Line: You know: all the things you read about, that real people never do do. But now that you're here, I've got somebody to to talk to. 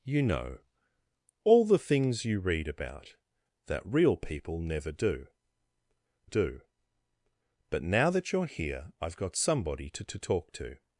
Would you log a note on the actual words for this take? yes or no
no